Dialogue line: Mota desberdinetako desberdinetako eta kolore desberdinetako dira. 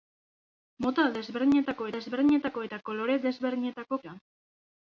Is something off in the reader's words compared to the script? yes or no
no